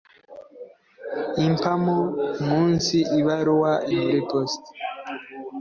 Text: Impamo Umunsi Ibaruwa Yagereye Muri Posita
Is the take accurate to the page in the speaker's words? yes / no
no